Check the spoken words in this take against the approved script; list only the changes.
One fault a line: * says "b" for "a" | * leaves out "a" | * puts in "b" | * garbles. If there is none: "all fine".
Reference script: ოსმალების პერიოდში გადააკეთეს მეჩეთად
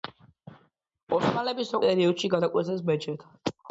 all fine